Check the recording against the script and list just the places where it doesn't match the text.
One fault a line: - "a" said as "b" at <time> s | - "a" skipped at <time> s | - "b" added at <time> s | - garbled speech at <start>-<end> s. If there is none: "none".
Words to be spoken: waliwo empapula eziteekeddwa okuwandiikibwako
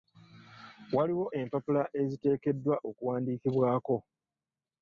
none